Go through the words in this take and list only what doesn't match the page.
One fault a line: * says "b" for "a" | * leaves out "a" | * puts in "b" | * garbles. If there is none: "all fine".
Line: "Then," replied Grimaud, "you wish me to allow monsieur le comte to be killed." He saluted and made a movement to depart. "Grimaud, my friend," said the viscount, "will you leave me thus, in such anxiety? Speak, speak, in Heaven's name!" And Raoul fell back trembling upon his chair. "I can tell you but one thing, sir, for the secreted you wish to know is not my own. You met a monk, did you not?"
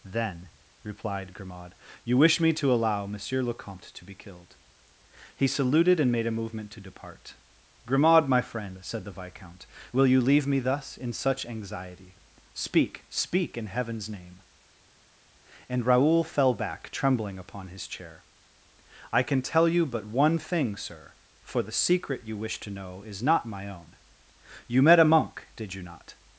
* says "secret" for "secreted"